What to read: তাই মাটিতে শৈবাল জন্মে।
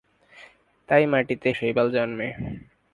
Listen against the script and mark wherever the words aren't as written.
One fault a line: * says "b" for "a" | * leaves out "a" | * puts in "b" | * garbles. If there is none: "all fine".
all fine